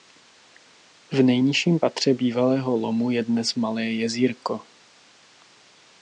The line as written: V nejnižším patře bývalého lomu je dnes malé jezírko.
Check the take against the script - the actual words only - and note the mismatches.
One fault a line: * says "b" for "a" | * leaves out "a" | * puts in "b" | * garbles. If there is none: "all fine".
all fine